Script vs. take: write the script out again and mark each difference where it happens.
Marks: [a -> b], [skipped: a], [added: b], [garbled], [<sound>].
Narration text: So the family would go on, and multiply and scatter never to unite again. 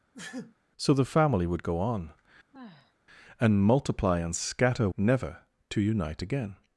[sneeze] So the family would go on, [sigh] and multiply and scatter never to unite again.